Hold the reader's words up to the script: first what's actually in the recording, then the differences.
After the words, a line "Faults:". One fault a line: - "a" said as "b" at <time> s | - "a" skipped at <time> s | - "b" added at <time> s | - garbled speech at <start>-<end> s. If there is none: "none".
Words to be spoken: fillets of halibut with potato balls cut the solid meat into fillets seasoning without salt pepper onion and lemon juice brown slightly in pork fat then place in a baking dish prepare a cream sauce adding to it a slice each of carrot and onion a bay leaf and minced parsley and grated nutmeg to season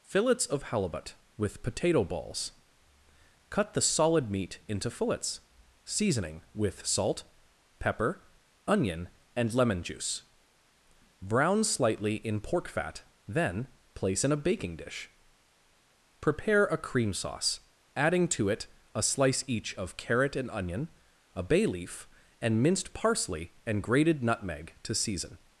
fillets of halibut with potato balls cut the solid meat into fillets seasoning with salt pepper onion and lemon juice brown slightly in pork fat then place in a baking dish prepare a cream sauce adding to it a slice each of carrot and onion a bay leaf and minced parsley and grated nutmeg to season
Faults:
- "without" said as "with" at 6.5 s